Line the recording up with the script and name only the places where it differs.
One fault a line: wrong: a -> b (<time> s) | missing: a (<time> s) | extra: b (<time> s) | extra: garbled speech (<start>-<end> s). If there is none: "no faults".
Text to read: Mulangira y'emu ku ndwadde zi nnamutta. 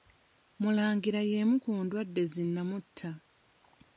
no faults